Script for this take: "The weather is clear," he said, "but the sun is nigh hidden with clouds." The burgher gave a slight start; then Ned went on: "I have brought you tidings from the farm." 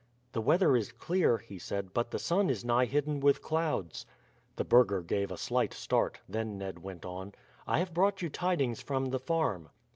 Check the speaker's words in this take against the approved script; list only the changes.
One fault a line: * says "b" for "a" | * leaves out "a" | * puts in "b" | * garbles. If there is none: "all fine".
all fine